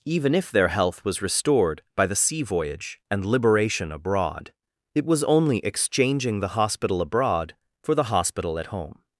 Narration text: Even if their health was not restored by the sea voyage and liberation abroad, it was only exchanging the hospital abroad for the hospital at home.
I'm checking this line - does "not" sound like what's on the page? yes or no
no